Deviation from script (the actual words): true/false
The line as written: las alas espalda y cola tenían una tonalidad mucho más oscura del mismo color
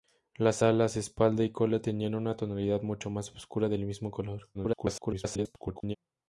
true